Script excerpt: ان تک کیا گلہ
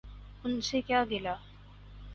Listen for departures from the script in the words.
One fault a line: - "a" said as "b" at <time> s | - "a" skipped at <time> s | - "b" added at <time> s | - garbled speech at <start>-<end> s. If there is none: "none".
- "تک" said as "سے" at 0.6 s